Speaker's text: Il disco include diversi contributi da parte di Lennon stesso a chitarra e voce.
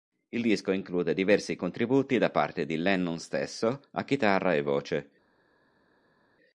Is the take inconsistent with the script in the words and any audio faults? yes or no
no